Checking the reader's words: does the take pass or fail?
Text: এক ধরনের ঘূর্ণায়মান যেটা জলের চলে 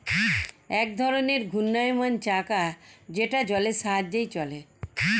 fail